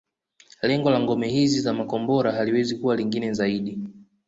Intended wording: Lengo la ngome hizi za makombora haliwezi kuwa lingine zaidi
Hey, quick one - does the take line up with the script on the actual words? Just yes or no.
yes